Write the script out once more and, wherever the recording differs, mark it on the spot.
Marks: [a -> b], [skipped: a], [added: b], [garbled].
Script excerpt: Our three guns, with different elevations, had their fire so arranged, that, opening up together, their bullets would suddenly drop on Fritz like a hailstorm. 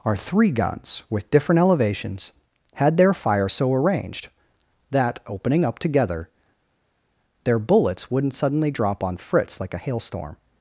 Our three guns, with different elevations, had their fire so arranged, that, opening up together, their bullets [would -> wouldn't] suddenly drop on Fritz like a hailstorm.